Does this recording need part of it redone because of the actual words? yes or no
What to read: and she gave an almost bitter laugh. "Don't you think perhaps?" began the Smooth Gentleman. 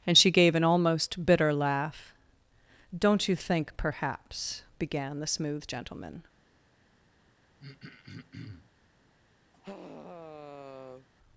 no